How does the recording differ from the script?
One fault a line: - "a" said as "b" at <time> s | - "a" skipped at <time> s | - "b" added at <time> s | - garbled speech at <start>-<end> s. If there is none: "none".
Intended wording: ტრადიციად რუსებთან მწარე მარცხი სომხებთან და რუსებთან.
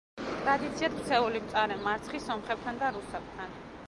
- "რუსებთან" said as "ქცეული" at 1.0 s